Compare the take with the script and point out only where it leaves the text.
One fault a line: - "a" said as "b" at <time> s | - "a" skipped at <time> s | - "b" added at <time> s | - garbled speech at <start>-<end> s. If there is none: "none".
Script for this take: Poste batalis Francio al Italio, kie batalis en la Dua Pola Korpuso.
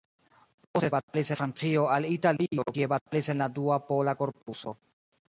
none